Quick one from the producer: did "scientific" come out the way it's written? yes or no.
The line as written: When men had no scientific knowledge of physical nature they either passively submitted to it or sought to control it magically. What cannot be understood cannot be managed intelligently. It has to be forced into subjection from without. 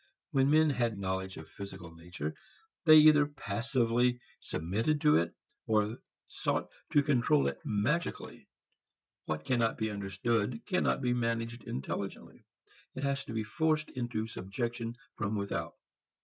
no